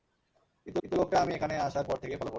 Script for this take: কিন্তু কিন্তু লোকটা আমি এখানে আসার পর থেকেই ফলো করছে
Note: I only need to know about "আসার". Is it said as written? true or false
true